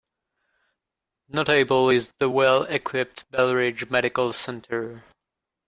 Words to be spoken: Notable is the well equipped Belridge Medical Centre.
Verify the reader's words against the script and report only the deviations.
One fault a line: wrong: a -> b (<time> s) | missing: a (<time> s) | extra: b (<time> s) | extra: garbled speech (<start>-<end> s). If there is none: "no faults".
no faults